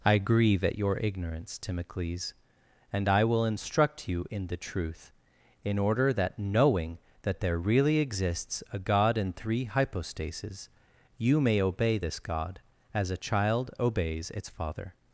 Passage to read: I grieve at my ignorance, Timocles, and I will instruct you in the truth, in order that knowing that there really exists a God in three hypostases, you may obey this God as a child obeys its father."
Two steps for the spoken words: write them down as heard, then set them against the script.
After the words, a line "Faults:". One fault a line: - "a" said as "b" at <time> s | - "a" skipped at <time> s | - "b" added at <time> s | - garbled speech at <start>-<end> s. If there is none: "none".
I grieve at your ignorance, Timocles, and I will instruct you in the truth, in order that knowing that there really exists a God in three hypostases, you may obey this God as a child obeys its father."
Faults:
- "my" said as "your" at 0.8 s